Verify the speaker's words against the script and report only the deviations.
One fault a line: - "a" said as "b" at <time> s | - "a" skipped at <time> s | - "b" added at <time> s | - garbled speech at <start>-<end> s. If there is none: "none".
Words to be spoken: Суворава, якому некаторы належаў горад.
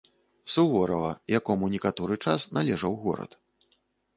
- "час" added at 2.2 s